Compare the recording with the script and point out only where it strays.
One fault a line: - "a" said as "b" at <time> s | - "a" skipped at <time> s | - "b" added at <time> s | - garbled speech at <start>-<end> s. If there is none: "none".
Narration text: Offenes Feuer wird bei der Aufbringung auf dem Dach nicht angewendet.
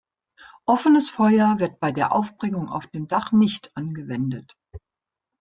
none